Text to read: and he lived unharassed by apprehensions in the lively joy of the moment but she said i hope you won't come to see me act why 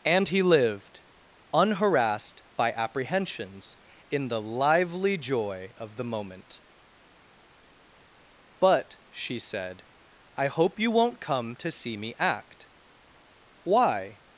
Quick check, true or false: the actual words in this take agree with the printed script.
true